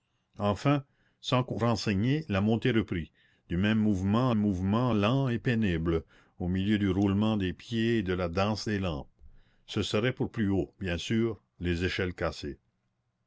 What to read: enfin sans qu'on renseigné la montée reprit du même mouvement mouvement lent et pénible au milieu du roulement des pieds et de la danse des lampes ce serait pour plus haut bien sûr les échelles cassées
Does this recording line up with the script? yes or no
yes